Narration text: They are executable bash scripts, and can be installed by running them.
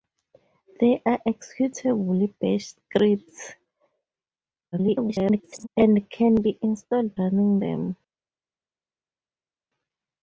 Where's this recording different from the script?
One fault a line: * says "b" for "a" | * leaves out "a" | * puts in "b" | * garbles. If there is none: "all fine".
* garbles
* leaves out "by"